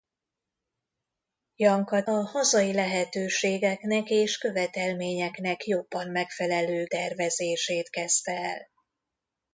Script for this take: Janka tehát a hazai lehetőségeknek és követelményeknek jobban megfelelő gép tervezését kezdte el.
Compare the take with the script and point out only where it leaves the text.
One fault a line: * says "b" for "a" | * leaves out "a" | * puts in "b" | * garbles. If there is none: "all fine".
* leaves out "tehát"
* leaves out "gép"